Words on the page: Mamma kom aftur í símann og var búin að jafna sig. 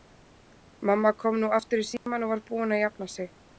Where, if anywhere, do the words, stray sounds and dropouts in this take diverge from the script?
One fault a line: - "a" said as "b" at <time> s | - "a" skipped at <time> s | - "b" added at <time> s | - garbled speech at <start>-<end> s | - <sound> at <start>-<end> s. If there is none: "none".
- "nú" added at 1.4 s
- dropout at 2.0-2.1 s